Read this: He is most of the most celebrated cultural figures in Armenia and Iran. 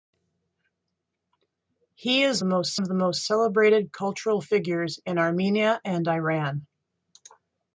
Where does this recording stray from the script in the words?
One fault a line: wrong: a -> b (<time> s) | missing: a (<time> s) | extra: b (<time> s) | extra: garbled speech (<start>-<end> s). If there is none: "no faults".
no faults